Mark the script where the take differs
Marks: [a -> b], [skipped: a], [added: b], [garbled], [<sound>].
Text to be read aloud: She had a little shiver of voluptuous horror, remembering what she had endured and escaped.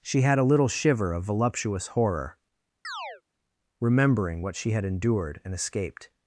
She had a little shiver of voluptuous horror, [chirp] remembering what she had endured and escaped.